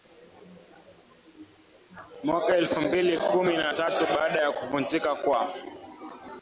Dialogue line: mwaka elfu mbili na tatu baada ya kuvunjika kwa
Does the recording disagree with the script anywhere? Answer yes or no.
yes